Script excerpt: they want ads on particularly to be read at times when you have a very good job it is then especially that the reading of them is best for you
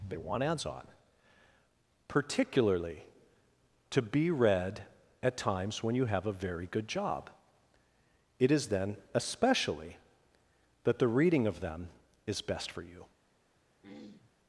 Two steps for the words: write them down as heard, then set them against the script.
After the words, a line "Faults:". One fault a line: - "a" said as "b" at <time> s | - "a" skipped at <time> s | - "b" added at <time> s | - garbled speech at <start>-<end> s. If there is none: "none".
they want ads on particularly to be read at times when you have a very good job it is then especially that the reading of them is best for you
Faults:
none